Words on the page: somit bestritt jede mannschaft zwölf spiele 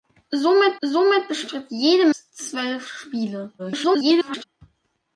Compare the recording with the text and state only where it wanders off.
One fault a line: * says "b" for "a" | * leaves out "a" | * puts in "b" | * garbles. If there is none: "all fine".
* puts in "somit"
* leaves out "mannschaft"
* garbles